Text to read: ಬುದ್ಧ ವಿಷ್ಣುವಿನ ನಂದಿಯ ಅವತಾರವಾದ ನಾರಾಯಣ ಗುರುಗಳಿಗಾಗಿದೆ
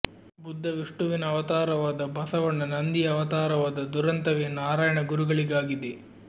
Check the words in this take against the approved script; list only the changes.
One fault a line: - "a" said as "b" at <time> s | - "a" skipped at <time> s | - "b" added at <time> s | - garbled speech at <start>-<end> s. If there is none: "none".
- "ಅವತಾರವಾದ ಬಸವಣ್ಣ" added at 1.2 s
- "ದುರಂತವೇ" added at 3.9 s